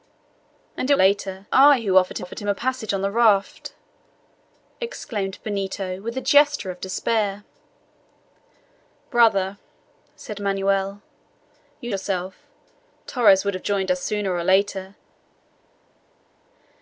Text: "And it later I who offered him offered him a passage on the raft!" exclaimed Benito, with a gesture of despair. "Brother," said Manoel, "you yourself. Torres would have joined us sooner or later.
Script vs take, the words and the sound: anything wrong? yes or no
no